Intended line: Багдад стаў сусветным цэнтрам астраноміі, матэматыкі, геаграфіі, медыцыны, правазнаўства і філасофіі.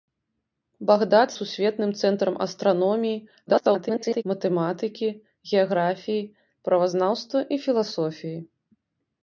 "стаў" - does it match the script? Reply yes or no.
no